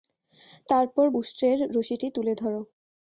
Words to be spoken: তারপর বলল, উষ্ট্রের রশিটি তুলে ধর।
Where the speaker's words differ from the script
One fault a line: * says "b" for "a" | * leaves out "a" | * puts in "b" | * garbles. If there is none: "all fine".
* leaves out "বলল"